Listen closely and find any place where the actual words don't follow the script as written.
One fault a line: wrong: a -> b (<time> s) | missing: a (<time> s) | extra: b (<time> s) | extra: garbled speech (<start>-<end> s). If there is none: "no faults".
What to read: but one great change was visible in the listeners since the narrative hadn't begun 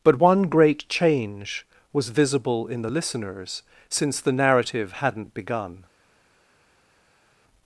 no faults